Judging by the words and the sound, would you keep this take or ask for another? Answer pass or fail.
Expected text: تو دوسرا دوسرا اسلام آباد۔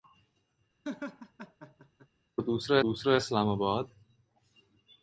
fail